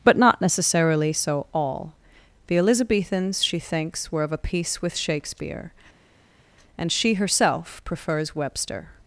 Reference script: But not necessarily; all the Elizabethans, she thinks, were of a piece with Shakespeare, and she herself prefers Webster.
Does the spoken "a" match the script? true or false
true